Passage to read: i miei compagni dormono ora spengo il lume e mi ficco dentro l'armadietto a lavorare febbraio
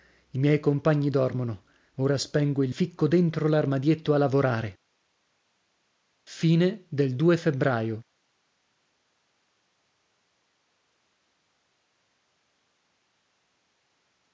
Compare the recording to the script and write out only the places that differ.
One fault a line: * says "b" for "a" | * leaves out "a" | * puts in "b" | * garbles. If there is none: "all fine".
* leaves out "lume e mi"